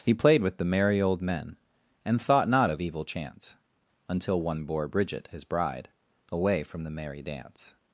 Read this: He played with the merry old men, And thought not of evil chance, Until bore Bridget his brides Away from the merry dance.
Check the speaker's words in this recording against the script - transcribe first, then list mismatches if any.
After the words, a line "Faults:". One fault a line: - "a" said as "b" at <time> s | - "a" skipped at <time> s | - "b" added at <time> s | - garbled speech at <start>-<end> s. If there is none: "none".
He played with the merry old men, And thought not of evil chance, Until one bore Bridget his bride Away from the merry dance.
Faults:
- "one" added at 4.4 s
- "brides" said as "bride" at 5.4 s